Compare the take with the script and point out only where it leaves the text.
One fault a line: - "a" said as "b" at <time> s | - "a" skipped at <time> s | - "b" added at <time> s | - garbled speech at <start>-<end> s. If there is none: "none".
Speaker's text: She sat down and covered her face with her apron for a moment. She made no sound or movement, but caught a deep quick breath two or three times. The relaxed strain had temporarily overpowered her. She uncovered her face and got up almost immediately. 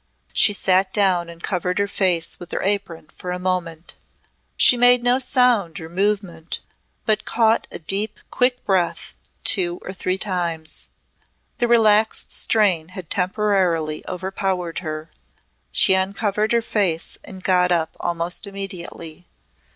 none